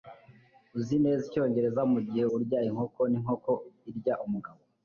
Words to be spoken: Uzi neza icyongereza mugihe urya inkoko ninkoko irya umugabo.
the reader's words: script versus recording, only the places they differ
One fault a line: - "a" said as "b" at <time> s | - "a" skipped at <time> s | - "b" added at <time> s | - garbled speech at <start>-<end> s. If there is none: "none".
none